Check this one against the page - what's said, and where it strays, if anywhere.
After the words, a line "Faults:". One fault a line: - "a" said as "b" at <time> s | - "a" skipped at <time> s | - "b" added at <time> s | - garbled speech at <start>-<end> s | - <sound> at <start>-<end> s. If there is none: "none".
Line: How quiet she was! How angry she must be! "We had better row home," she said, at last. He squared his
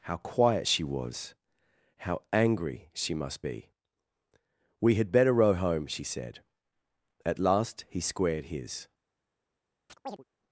How quiet she was! How angry she must be! "We had better row home," she said, at last. He squared his
Faults:
- chirp at 9.9-10.2 s